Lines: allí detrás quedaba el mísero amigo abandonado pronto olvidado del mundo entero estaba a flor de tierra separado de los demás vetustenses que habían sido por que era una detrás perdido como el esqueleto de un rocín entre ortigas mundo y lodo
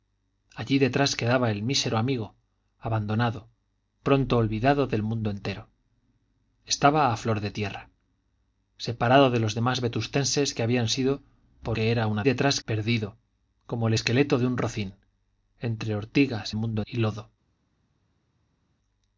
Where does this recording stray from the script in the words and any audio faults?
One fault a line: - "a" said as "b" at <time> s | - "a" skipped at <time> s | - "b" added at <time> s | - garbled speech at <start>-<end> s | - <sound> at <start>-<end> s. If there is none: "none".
none